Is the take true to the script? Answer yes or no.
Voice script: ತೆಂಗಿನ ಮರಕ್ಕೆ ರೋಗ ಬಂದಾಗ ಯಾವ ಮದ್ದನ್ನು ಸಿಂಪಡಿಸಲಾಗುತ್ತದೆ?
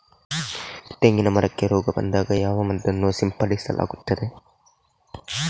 yes